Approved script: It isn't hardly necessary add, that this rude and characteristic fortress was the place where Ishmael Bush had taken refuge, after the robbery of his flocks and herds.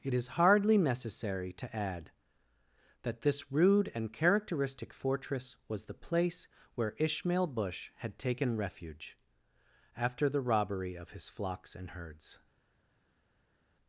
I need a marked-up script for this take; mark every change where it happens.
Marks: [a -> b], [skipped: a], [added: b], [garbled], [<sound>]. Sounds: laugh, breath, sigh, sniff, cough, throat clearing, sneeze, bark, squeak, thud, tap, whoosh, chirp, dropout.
It [isn't -> is] hardly necessary [added: to] add, that this rude and characteristic fortress was the place where Ishmael Bush had taken refuge, after the robbery of his flocks and herds.